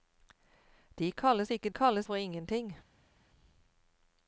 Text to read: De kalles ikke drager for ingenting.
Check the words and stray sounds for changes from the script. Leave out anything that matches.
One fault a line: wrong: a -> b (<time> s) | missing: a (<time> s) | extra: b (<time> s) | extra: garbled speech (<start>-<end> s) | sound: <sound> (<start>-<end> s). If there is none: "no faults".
wrong: drager -> kalles (1.7 s)